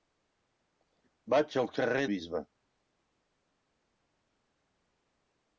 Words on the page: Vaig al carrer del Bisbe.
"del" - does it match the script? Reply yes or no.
no